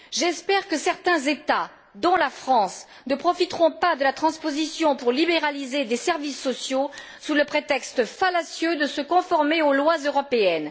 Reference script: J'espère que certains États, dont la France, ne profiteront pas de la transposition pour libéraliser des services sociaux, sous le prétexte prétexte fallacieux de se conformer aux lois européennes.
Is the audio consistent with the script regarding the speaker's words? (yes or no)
no